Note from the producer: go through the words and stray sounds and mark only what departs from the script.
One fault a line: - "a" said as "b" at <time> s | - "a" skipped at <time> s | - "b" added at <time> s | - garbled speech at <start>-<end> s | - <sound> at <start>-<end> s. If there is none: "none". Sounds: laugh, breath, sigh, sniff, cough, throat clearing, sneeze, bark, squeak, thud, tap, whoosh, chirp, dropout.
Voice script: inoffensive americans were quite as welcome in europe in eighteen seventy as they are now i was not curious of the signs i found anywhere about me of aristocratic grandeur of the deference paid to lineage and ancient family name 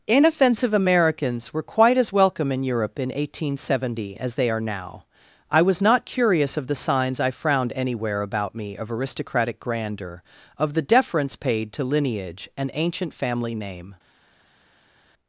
- "found" said as "frowned" at 7.3 s